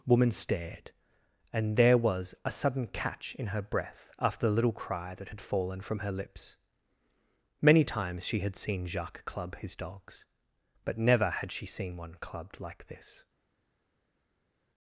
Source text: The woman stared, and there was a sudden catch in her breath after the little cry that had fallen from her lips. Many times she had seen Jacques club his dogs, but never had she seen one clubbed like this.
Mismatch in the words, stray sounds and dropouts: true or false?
true